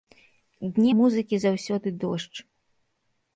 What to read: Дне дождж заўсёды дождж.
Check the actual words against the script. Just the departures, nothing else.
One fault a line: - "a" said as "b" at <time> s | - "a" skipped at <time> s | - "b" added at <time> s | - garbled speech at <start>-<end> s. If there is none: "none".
- "дождж" said as "музыкі" at 1.0 s